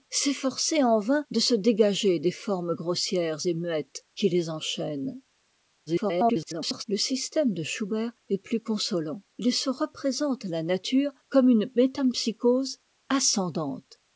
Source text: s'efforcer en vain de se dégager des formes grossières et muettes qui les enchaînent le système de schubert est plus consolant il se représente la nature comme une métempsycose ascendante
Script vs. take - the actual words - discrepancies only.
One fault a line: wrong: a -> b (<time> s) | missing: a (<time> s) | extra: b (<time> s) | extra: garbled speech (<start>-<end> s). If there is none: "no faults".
extra: garbled speech (5.9-6.8 s)